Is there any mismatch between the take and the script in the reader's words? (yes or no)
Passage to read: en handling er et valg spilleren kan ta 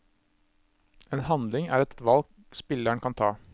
yes